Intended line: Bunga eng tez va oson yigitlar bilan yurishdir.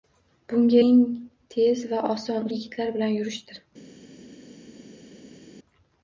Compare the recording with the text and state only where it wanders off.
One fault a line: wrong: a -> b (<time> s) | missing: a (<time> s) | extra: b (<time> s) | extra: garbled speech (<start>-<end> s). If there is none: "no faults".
no faults